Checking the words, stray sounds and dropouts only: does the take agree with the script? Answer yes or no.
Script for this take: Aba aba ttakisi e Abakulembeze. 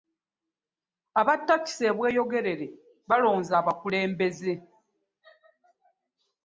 no